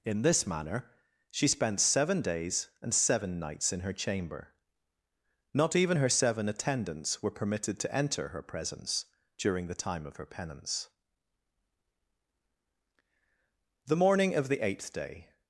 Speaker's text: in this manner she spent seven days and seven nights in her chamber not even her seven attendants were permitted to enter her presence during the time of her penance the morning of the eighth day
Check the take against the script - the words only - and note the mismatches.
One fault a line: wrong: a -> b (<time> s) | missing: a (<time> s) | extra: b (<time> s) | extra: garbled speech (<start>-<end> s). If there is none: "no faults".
no faults